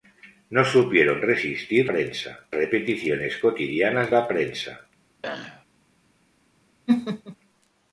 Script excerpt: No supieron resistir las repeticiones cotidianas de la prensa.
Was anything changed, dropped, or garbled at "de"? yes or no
yes